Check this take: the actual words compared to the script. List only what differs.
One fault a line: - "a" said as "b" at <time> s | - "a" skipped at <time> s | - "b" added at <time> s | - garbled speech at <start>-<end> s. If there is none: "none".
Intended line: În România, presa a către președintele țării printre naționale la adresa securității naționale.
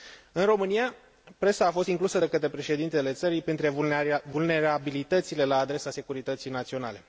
- "fost inclusă de" added at 1.7 s
- "naționale" said as "vulnerabilitățile" at 4.3 s